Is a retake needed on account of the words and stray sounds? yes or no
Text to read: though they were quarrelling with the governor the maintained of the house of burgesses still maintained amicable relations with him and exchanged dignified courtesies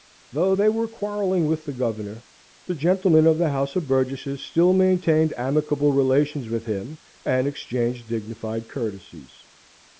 yes